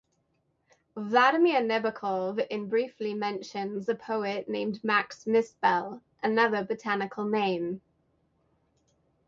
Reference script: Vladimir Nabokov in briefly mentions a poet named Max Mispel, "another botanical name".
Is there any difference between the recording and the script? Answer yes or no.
no